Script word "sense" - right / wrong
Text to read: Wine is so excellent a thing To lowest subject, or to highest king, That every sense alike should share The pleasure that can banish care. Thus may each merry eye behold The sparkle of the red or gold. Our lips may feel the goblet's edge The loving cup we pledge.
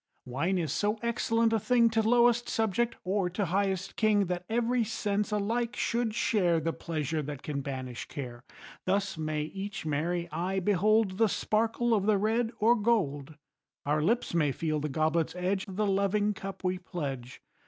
right